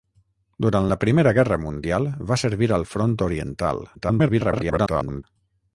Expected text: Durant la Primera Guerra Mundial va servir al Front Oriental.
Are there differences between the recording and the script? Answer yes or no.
yes